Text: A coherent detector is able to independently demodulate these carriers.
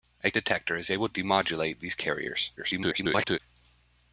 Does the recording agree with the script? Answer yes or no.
no